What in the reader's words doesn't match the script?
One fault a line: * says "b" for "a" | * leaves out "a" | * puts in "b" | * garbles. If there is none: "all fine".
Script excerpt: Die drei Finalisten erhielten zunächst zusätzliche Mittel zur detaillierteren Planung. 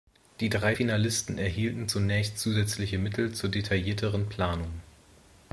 all fine